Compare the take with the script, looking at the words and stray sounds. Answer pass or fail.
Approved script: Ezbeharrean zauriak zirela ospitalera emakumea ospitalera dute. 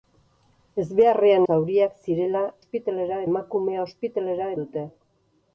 pass